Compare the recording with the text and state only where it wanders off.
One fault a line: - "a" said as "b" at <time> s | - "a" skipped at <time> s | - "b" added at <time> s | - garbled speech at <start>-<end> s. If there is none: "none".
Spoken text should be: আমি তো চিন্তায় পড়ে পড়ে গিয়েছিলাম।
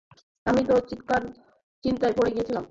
- "পড়ে" skipped at 2.3 s